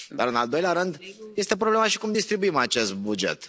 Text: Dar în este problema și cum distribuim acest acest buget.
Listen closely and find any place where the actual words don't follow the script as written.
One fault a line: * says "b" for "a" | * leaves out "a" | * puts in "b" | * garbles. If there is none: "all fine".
* puts in "al doilea rând"
* leaves out "acest"